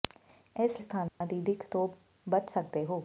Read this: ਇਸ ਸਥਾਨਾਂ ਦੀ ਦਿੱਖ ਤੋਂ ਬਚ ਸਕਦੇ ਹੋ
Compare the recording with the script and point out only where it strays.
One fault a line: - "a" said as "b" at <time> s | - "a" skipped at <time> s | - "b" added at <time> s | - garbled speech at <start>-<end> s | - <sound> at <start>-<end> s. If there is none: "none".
- dropout at 1.1-1.2 s